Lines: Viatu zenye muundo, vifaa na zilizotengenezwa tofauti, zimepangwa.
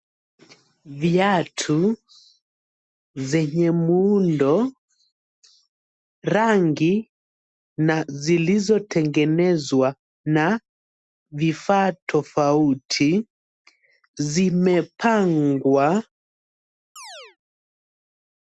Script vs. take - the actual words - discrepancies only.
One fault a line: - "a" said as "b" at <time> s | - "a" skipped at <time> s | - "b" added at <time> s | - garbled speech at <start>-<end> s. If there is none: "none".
- "vifaa" said as "rangi" at 6.2 s
- "na vifaa" added at 10.3 s